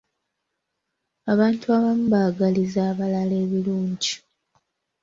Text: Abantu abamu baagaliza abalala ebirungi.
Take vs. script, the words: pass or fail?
pass